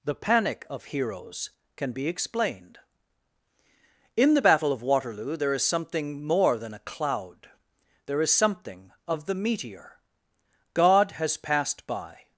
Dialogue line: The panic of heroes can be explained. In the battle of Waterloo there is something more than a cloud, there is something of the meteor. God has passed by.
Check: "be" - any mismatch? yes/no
no